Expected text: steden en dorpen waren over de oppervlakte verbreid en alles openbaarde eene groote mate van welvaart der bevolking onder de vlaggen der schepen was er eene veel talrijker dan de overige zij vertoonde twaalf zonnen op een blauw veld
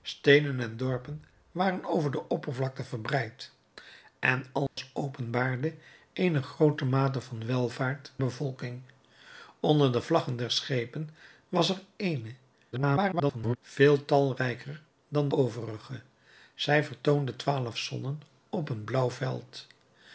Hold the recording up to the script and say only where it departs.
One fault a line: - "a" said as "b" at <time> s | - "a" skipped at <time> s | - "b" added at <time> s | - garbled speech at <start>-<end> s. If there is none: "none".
- "der" skipped at 8.1 s
- garbled speech at 12.7-13.6 s
- "de" skipped at 15.3 s